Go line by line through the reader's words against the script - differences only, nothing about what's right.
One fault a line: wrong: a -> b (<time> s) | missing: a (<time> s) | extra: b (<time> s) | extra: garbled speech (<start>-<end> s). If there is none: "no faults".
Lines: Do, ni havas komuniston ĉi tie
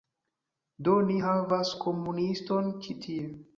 no faults